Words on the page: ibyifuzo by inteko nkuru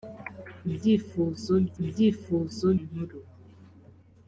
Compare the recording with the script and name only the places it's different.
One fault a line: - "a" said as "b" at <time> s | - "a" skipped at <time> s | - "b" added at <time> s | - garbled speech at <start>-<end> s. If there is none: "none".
- "inteko" said as "ibyifuzo" at 1.8 s